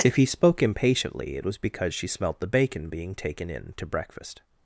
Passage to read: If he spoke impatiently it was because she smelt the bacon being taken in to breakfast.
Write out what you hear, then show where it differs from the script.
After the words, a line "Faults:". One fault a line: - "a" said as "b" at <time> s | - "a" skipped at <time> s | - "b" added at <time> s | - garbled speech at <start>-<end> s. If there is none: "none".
If he spoke impatiently it was because she smelt the bacon being taken in to breakfast.
Faults:
none